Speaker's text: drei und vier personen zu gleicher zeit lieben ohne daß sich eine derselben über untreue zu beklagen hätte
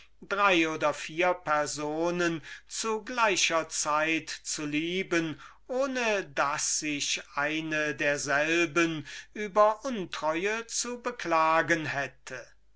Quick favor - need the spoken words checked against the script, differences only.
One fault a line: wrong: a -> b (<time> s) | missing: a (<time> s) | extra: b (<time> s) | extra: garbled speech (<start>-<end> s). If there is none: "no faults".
wrong: und -> oder (0.7 s)
extra: zu (4.3 s)